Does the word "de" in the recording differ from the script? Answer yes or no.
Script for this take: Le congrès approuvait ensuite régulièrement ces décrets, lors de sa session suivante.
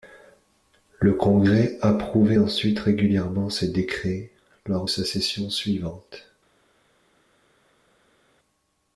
yes